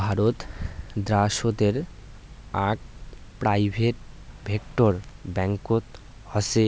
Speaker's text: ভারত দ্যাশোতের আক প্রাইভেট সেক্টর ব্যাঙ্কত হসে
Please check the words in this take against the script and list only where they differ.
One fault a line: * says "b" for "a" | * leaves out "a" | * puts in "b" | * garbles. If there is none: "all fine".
all fine